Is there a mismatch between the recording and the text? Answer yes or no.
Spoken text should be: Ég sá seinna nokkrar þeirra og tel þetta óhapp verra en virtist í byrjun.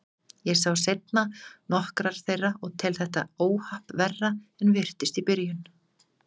no